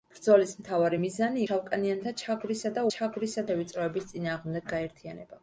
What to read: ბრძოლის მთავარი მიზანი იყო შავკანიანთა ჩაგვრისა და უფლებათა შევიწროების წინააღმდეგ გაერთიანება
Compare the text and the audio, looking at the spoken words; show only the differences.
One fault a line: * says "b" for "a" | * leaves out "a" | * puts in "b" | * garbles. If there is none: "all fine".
* leaves out "იყო"
* says "ჩაგვრისა" for "უფლებათა"